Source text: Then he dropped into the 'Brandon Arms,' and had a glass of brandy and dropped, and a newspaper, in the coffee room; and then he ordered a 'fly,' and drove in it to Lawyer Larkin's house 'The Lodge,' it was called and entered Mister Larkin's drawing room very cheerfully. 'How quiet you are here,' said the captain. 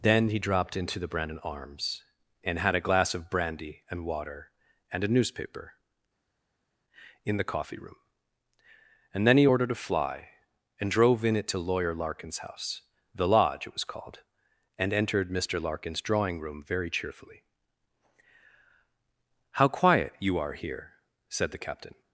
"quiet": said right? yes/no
yes